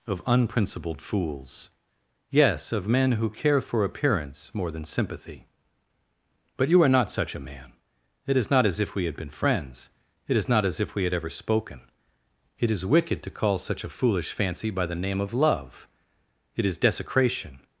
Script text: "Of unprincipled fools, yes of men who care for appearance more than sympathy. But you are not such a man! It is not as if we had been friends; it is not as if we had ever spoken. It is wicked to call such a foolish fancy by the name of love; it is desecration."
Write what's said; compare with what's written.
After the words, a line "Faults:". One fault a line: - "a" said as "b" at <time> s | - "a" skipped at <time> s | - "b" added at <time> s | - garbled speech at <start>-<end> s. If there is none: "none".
"Of unprincipled fools, yes of men who care for appearance more than sympathy. But you are not such a man! It is not as if we had been friends; it is not as if we had ever spoken. It is wicked to call such a foolish fancy by the name of love; it is desecration."
Faults:
none